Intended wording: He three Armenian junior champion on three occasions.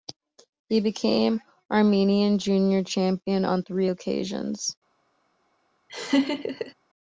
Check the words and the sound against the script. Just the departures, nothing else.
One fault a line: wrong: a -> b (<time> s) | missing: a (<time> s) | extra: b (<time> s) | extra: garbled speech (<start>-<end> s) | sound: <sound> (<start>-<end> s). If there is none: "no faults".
wrong: three -> became (0.8 s)
sound: laugh (5.9-6.7 s)